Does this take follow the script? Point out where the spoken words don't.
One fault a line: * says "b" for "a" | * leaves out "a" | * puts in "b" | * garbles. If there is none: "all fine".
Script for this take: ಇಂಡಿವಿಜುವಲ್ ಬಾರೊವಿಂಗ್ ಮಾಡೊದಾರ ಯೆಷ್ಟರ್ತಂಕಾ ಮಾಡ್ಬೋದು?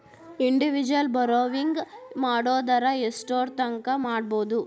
all fine